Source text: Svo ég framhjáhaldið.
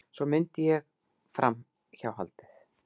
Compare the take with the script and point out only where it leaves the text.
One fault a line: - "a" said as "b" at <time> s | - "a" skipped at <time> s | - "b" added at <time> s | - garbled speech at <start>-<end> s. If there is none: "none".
- "mundi" added at 0.3 s